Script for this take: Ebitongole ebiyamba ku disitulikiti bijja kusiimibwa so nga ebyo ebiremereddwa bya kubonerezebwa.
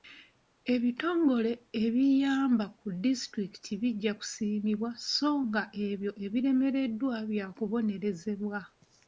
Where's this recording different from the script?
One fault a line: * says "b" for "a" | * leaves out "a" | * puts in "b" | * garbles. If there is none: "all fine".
all fine